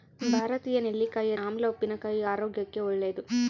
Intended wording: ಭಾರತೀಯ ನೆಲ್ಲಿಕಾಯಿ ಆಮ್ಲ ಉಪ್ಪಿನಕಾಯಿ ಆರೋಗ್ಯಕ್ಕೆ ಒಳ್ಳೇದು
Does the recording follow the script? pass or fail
pass